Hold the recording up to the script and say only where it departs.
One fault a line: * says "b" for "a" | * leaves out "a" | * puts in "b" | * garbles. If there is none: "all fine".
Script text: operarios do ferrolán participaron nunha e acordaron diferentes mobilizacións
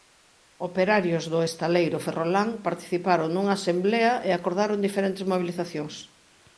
* puts in "estaleiro"
* puts in "asemblea"